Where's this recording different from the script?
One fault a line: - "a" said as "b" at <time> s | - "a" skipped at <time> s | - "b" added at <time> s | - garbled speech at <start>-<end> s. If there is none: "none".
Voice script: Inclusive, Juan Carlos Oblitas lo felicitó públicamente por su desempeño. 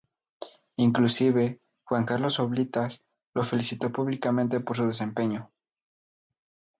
none